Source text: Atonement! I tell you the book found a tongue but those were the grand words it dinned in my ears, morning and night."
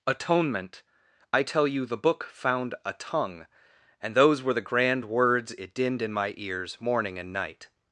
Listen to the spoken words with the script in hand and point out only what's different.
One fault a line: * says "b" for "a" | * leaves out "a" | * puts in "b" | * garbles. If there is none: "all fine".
* says "and" for "but"